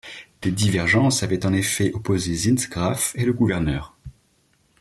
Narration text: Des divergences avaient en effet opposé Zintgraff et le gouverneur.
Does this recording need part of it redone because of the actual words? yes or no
no